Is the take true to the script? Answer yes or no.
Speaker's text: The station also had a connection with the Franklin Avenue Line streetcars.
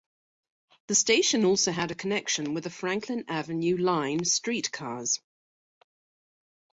yes